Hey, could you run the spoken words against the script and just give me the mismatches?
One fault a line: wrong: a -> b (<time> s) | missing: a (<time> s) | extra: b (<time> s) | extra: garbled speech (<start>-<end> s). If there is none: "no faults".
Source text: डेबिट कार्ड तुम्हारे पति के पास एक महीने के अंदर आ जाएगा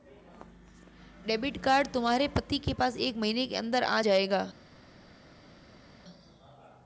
no faults